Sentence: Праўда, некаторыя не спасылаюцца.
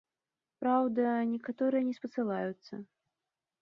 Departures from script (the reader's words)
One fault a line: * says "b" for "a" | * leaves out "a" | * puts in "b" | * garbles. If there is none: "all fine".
all fine